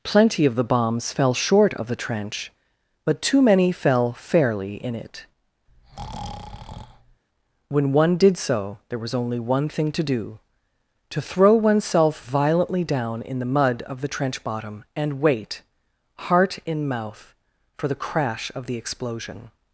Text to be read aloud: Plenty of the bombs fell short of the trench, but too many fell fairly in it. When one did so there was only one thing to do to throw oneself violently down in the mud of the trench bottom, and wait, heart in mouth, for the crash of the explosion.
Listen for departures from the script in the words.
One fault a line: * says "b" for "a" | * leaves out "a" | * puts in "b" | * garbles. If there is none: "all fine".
all fine